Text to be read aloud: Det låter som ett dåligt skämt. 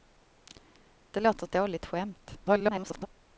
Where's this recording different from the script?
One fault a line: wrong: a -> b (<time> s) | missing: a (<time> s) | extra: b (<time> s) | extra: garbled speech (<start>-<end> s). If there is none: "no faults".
missing: som (1.4 s)
extra: garbled speech (2.4-3.1 s)